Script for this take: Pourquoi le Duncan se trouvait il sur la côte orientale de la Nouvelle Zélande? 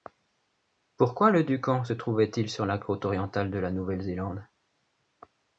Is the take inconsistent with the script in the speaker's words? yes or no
no